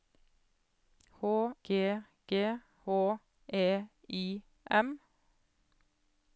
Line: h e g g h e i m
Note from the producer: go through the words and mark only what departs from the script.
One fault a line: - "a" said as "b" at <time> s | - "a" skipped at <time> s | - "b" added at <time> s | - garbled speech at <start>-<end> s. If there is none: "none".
- "e" skipped at 1.6 s